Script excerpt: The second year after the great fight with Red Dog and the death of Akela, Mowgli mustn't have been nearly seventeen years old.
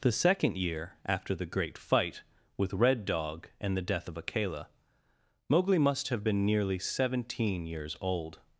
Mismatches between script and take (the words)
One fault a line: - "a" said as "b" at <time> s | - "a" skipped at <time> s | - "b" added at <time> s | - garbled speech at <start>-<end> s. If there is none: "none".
- "mustn't" said as "must" at 5.8 s